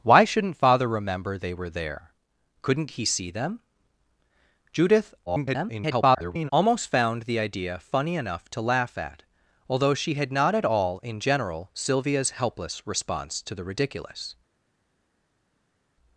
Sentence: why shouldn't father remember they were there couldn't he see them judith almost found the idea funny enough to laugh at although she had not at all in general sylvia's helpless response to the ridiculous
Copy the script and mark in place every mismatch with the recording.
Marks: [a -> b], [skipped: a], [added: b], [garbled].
why shouldn't father remember they were there couldn't he see them judith [garbled] almost found the idea funny enough to laugh at although she had not at all in general sylvia's helpless response to the ridiculous